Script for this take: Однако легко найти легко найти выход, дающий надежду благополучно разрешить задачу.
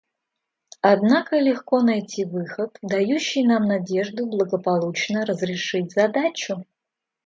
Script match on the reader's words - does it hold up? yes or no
no